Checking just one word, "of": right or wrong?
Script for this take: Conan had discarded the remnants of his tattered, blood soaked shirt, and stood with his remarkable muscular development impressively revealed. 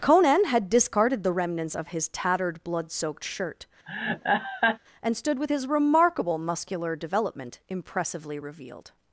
right